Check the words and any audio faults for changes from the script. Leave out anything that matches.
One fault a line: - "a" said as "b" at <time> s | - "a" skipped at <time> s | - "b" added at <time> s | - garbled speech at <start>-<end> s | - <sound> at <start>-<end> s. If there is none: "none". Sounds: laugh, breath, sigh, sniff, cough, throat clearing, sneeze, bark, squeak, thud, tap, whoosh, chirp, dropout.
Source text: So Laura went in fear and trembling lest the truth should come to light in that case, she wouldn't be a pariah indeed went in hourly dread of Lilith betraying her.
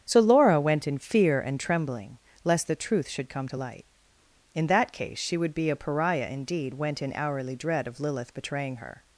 - "wouldn't" said as "would" at 5.4 s